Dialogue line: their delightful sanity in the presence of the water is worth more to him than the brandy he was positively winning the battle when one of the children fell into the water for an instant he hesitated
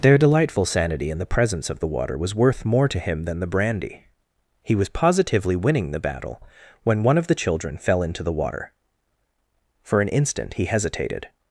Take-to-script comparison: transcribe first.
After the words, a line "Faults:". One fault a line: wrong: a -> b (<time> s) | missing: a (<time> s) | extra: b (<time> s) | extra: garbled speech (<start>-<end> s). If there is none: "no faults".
their delightful sanity in the presence of the water was worth more to him than the brandy he was positively winning the battle when one of the children fell into the water for an instant he hesitated
Faults:
wrong: is -> was (2.2 s)